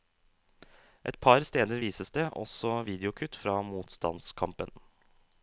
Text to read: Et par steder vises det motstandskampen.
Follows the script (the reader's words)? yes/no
no